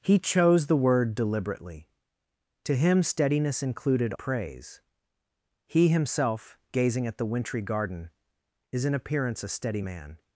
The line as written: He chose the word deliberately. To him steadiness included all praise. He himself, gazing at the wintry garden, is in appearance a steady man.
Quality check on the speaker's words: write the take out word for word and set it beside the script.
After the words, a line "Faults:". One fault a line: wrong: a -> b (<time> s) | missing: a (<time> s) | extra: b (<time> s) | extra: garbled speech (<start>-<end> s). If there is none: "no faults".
He chose the word deliberately. To him steadiness included praise. He himself, gazing at the wintry garden, is in appearance a steady man.
Faults:
missing: all (4.2 s)